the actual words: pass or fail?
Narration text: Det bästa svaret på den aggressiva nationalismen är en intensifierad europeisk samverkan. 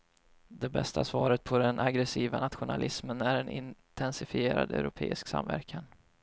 pass